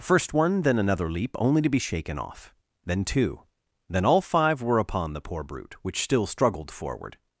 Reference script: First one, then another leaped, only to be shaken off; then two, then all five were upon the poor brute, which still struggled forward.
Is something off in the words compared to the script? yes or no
yes